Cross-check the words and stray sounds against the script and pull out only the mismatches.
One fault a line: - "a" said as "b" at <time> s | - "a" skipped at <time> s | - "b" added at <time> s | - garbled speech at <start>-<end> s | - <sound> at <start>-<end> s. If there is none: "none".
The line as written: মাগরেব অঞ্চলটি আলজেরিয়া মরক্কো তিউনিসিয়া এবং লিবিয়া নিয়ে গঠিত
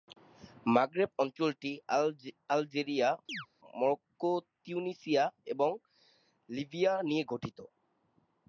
- chirp at 3.3-3.5 s